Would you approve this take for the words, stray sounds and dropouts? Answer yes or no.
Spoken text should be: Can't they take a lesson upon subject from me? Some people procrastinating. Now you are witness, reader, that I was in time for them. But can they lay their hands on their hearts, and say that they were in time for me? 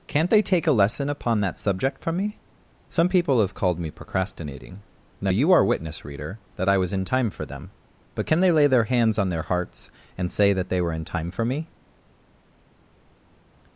no